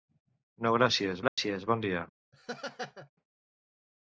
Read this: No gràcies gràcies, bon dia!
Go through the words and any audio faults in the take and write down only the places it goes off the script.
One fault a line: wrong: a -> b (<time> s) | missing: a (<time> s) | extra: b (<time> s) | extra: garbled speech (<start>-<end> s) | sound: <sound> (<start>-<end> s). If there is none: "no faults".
sound: dropout (1.3-1.4 s)
sound: laugh (2.3-3.1 s)